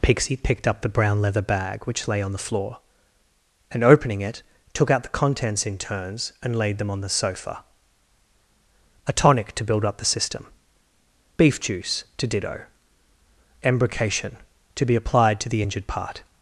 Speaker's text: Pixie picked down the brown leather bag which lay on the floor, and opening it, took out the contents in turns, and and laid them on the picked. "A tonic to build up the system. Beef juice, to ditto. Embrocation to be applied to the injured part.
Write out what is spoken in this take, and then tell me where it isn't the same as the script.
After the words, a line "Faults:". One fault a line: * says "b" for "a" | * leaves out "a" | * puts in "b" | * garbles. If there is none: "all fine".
Pixie picked up the brown leather bag which lay on the floor, and opening it, took out the contents in turns, and laid them on the sofa. "A tonic to build up the system. Beef juice, to ditto. Embrocation to be applied to the injured part.
Faults:
* says "up" for "down"
* leaves out "and"
* says "sofa" for "picked"